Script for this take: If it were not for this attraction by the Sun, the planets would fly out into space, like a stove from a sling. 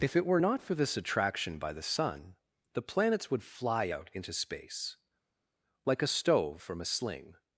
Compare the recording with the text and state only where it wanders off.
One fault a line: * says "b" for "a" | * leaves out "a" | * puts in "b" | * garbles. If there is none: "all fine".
all fine